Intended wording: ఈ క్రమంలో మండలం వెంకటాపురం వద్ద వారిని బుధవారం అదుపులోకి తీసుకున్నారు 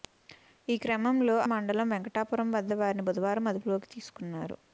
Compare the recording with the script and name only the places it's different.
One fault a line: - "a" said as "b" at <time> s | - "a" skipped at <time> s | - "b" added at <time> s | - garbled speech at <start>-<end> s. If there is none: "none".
none